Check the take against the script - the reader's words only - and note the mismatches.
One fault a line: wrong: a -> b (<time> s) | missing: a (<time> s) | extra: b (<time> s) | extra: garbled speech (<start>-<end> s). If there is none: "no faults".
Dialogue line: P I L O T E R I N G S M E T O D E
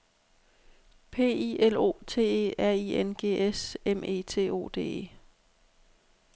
no faults